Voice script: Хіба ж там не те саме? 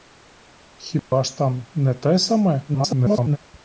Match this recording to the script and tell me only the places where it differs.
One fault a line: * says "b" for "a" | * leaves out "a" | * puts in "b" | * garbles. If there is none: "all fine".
* garbles